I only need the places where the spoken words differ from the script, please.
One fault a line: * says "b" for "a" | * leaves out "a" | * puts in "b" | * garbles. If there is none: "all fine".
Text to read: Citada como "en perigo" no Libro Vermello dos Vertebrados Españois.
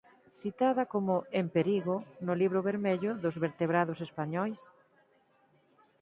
all fine